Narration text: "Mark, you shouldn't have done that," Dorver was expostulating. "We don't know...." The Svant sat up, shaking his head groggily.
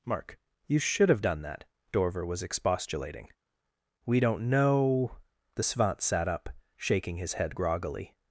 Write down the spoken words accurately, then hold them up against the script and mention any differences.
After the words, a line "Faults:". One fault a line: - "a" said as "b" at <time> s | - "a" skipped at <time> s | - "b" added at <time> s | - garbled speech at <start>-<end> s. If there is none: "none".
"Mark, you should have done that," Dorver was expostulating. "We don't know...." The Svant sat up, shaking his head groggily.
Faults:
- "shouldn't" said as "should" at 0.8 s